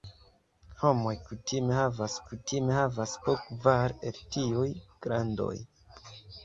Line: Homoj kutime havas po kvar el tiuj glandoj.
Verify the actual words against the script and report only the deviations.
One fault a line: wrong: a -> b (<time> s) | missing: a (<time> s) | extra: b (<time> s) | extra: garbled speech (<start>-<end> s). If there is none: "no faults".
extra: kutime havas (2.3 s)